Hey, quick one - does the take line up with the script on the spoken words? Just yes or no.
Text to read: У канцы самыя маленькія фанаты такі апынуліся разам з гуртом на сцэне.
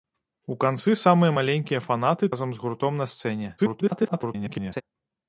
no